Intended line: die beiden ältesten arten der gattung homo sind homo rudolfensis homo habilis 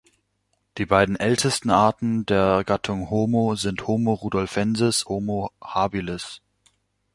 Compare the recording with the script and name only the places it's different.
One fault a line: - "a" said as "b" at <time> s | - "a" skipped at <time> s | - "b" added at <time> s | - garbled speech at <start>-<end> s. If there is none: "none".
none